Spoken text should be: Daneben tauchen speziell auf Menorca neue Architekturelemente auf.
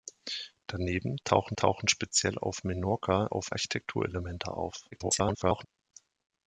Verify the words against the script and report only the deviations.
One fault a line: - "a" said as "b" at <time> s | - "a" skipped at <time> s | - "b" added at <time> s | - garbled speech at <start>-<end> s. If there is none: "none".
- "tauchen" added at 1.6 s
- "neue" said as "auf" at 3.3 s
- garbled speech at 4.9-5.7 s